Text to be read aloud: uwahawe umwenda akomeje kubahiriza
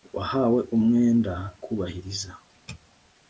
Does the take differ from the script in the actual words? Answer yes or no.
yes